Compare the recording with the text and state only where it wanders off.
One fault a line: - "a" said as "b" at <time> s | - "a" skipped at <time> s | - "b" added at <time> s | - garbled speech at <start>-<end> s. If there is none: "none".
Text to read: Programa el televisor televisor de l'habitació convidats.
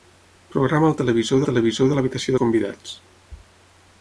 none